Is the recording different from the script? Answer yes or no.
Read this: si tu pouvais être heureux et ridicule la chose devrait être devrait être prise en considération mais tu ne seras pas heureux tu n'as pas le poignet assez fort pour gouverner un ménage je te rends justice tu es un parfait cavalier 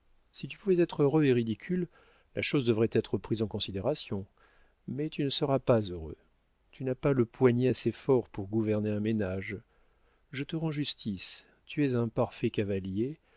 yes